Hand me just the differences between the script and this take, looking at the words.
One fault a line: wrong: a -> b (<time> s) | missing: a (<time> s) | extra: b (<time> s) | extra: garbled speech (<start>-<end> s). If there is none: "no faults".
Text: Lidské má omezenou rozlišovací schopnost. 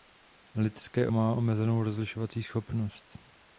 no faults